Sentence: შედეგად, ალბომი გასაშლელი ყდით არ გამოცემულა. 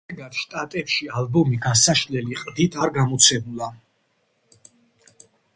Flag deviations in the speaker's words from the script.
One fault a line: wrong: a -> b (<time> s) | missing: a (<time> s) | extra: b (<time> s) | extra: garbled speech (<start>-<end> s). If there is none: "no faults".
extra: შტატებში (0.4 s)